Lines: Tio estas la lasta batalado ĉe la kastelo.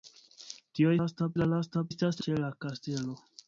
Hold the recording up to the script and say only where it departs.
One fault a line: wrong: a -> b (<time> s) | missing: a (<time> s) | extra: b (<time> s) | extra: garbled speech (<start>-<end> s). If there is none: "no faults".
wrong: estas -> lasta (1.0 s)
wrong: batalado -> estas (1.9 s)